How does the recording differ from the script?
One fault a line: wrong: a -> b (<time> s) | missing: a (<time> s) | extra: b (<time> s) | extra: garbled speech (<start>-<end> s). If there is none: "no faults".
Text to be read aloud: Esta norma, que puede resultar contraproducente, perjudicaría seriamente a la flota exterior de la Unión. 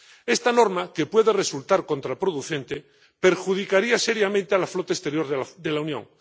no faults